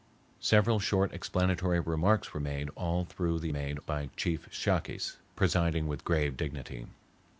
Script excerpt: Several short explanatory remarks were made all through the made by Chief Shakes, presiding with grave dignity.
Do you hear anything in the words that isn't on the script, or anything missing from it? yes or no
no